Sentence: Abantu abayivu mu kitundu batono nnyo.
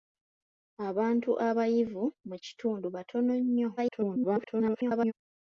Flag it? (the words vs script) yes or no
yes